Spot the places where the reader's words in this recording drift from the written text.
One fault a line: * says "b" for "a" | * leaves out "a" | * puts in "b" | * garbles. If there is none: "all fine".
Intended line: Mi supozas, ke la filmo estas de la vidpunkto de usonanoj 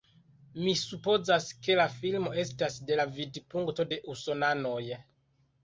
all fine